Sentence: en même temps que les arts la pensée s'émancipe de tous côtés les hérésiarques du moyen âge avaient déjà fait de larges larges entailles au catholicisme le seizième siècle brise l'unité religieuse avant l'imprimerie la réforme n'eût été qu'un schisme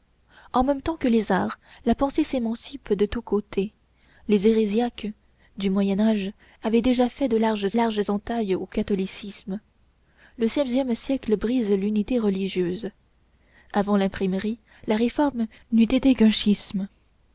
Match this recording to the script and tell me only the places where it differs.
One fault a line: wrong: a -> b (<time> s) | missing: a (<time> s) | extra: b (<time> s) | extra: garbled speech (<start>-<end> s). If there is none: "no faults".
no faults